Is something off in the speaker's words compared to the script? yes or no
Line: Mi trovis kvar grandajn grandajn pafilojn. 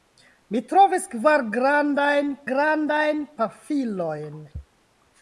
no